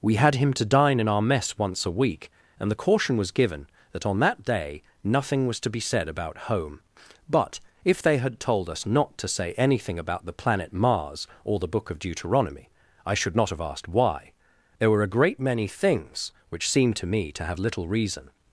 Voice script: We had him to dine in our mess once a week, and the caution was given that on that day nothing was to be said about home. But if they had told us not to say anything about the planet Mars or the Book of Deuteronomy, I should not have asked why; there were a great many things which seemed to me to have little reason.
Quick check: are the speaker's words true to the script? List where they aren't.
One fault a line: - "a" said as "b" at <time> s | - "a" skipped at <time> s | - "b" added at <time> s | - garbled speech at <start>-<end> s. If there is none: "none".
none